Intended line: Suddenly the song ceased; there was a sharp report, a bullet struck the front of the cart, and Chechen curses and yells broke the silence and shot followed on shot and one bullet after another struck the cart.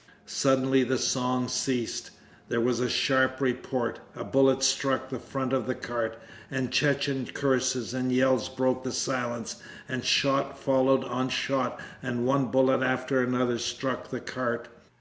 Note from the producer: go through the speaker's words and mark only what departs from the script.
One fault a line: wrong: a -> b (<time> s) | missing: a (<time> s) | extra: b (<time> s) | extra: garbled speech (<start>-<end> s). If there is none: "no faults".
no faults